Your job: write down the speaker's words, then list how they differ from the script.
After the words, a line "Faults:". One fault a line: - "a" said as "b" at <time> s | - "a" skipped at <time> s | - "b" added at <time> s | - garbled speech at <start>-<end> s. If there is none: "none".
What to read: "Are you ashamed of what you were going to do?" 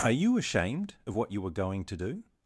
"Are you ashamed of what you were going to do?"
Faults:
none